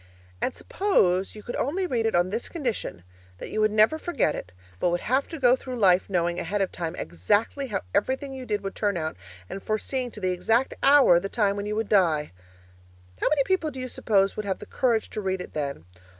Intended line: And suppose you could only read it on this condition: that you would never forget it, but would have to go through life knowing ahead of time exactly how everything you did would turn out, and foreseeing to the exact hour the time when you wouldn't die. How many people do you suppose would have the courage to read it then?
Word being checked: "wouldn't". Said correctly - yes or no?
no